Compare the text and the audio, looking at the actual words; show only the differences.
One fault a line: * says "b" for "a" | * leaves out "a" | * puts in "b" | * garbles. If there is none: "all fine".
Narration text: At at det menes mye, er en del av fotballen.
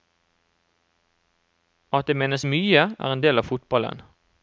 * leaves out "at"